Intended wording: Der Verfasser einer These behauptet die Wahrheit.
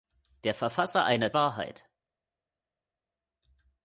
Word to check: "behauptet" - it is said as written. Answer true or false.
false